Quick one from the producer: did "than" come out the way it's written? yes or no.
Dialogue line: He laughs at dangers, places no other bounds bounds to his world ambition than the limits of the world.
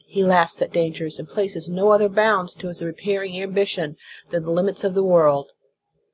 yes